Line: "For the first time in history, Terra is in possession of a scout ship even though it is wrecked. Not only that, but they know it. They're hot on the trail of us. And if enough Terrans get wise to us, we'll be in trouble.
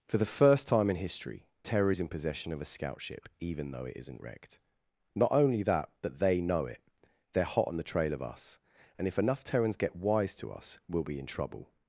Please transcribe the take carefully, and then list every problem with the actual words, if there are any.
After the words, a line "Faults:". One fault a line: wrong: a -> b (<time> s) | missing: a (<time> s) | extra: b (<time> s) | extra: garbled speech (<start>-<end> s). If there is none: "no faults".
"For the first time in history, Terra is in possession of a scout ship even though it isn't wrecked. Not only that, but they know it. They're hot on the trail of us. And if enough Terrans get wise to us, we'll be in trouble.
Faults:
wrong: is -> isn't (4.0 s)